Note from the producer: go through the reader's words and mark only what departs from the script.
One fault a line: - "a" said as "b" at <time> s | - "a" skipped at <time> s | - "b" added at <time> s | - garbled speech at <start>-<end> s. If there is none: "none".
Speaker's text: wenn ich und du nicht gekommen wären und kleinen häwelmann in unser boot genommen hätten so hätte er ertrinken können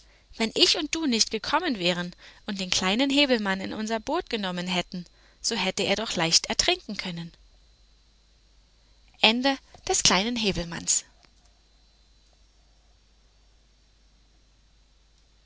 - "den" added at 2.6 s
- "doch leicht" added at 6.0 s